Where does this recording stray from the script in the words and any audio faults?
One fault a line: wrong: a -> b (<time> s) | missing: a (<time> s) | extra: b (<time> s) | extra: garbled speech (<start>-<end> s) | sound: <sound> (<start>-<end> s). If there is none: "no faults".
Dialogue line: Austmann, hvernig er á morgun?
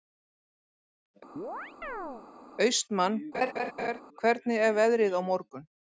sound: chirp (1.4-2.3 s)
sound: laugh (3.3-4.0 s)
extra: veðrið (4.8 s)